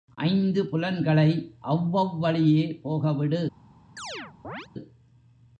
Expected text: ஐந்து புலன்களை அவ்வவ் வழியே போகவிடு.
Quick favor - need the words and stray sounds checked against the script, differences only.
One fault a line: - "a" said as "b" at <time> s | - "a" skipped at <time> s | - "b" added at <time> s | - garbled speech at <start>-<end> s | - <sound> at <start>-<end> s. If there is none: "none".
- chirp at 4.0-4.7 s